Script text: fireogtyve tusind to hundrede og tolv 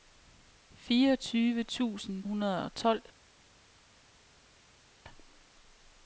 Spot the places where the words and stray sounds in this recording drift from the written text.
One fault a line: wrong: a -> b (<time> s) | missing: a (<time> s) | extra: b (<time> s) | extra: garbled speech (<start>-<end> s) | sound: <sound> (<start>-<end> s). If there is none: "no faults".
missing: to (2.2 s)